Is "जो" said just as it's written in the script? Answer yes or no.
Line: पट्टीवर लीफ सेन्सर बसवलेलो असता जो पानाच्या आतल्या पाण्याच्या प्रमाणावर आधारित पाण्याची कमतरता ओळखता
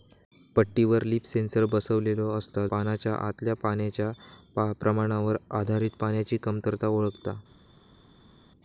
no